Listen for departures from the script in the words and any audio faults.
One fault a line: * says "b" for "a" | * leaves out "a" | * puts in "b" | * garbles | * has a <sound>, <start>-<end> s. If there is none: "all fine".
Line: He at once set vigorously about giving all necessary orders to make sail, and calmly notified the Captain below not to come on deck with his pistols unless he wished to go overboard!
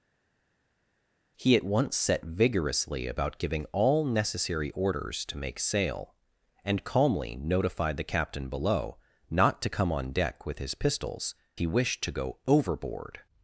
* leaves out "unless"